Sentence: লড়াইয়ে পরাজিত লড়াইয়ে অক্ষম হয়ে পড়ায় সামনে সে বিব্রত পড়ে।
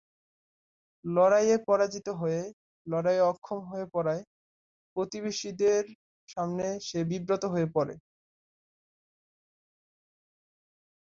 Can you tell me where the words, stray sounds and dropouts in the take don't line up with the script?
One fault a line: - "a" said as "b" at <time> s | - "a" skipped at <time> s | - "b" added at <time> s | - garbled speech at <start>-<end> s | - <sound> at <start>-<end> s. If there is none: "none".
- "হয়ে" added at 2.2 s
- "প্রতিবেশীদের" added at 5.0 s
- "হয়ে" added at 7.5 s